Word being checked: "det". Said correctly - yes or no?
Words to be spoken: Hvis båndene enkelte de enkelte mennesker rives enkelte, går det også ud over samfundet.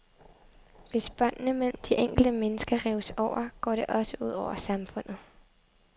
yes